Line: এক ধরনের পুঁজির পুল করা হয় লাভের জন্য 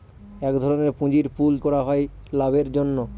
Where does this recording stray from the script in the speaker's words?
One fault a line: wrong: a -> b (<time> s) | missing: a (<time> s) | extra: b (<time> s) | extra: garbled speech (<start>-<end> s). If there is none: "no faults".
no faults